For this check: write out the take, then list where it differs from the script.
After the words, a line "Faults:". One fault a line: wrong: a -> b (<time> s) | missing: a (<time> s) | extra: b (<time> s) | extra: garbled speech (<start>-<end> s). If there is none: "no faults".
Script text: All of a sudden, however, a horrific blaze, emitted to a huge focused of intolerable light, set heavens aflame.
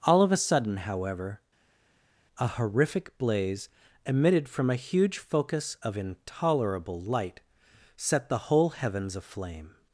All of a sudden, however, a horrific blaze, emitted from a huge focus of intolerable light, set the whole heavens aflame.
Faults:
wrong: to -> from (4.5 s)
wrong: focused -> focus (5.2 s)
extra: the whole (8.3 s)